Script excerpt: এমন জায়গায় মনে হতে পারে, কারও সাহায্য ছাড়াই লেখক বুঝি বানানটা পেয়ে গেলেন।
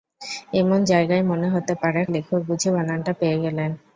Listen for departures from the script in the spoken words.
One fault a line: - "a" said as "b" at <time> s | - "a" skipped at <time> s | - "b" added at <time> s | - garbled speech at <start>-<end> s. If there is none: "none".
- "কারও সাহায্য ছাড়াই" skipped at 2.0 s